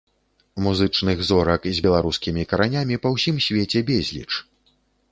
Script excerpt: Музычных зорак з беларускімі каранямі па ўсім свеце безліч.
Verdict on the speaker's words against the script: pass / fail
pass